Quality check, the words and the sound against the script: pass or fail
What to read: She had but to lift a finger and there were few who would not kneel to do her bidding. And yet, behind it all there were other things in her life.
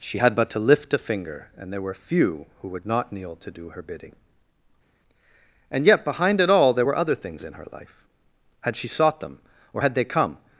fail